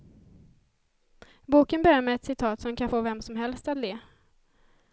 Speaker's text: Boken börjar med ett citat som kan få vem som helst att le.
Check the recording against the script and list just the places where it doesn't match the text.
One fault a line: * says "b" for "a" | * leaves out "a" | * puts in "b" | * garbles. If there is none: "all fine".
all fine